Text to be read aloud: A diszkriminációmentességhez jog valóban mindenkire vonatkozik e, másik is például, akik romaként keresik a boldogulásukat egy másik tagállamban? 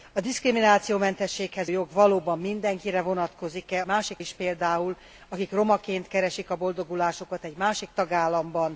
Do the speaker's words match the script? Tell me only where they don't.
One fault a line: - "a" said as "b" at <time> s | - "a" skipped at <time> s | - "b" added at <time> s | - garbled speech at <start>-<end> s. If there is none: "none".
none